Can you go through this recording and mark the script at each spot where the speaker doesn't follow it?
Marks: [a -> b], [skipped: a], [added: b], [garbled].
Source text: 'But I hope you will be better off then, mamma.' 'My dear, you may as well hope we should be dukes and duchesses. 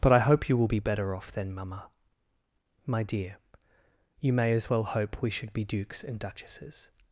'But I hope you will be better off then, mamma.' 'My dear, you may as well hope we should be dukes and duchesses.